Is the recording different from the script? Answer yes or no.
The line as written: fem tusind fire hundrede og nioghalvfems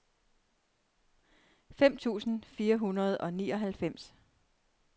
no